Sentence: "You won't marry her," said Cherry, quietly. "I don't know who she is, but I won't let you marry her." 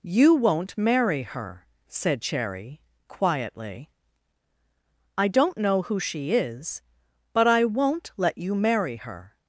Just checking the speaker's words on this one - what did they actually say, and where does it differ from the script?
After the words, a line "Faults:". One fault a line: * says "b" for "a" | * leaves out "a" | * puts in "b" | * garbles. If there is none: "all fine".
"You won't marry her," said Cherry, quietly. "I don't know who she is, but I won't let you marry her."
Faults:
all fine